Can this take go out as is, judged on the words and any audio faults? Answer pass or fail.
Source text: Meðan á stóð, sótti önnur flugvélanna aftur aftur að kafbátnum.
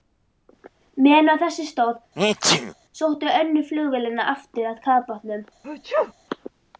fail